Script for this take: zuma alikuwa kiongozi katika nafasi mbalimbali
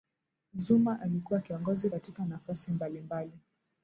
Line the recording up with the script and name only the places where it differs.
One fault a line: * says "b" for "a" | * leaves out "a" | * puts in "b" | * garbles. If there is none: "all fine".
all fine